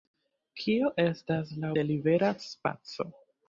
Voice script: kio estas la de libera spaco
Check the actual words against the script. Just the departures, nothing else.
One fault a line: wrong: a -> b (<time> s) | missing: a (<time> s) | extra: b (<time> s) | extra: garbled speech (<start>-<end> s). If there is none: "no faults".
no faults